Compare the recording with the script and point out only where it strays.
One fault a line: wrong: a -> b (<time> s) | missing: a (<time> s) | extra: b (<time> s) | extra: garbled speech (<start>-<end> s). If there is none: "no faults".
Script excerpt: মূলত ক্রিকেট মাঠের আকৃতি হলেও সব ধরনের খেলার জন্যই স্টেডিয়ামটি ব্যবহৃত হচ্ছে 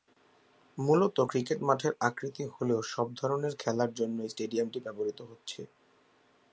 no faults